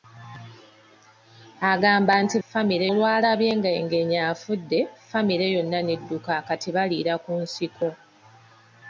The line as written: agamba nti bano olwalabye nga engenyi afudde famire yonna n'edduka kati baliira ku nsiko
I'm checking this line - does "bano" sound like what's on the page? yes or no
no